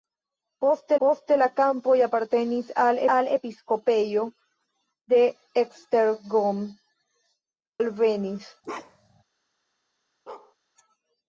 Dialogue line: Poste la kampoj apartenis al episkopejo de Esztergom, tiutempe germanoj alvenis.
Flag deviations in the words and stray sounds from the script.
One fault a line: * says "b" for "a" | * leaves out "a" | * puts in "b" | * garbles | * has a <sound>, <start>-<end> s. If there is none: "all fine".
* puts in "poste"
* puts in "al"
* leaves out "tiutempe germanoj"
* has a bark, 8.6-9.2 s
* has a bark, 10.3-10.6 s